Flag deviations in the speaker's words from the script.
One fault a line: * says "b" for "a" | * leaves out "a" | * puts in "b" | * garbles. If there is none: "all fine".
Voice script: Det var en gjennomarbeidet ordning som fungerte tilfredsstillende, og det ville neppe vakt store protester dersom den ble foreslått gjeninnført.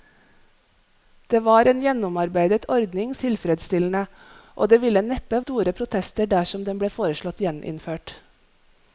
* leaves out "som fungerte"
* leaves out "vakt"